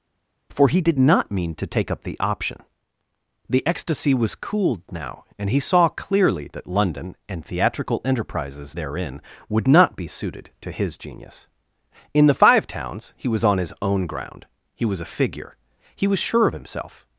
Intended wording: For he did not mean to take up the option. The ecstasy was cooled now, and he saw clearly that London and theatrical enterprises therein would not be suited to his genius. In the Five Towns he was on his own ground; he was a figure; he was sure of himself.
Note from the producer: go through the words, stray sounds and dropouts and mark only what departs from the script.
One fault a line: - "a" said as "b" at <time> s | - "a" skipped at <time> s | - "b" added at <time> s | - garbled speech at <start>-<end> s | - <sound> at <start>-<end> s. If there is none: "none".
none